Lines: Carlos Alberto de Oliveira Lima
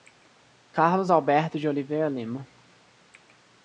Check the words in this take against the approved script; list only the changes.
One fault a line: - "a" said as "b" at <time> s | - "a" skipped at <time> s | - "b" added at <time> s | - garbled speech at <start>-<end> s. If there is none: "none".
none